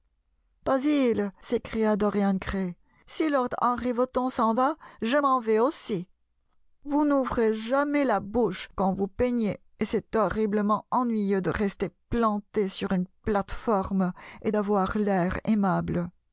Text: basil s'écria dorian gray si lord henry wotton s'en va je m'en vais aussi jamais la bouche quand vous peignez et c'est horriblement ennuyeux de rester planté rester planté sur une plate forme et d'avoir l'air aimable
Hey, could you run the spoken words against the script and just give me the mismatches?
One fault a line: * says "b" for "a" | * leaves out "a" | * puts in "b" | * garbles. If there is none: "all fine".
* puts in "vous n'ouvrez"
* leaves out "rester planté"